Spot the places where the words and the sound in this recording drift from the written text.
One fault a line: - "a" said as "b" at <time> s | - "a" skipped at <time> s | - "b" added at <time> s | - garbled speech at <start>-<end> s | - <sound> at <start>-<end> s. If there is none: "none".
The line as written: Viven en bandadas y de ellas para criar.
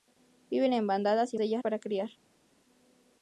none